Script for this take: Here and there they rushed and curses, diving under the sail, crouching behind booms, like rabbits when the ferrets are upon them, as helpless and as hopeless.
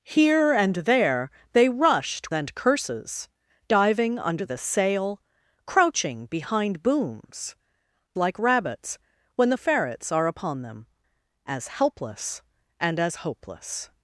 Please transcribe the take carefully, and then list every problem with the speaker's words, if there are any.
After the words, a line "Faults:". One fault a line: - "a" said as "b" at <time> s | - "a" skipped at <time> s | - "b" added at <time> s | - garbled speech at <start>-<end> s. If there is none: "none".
Here and there they rushed and curses, diving under the sail, crouching behind booms, like rabbits when the ferrets are upon them, as helpless and as hopeless.
Faults:
none